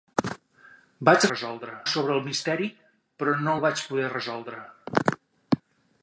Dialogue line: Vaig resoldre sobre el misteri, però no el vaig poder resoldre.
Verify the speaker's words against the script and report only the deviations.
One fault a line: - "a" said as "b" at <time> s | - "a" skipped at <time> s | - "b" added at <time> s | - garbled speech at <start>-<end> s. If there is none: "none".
none